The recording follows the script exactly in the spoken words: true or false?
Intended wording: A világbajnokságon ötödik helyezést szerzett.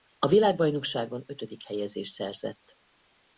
true